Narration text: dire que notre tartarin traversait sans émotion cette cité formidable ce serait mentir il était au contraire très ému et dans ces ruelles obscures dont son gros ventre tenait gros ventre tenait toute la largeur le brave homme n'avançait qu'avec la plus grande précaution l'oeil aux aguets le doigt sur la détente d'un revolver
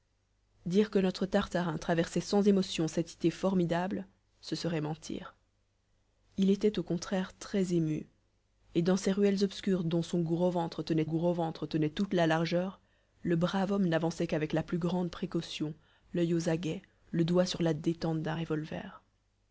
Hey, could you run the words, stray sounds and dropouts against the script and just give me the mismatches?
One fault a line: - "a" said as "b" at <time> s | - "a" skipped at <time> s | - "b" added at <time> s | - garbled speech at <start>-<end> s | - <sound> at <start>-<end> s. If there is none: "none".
none